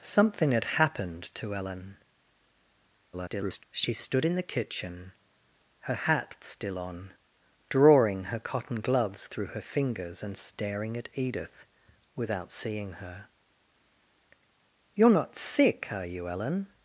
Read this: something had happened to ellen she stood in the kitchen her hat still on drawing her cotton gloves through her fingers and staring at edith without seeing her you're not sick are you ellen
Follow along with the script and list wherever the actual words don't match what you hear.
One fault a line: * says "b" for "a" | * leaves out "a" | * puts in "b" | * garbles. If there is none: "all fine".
* garbles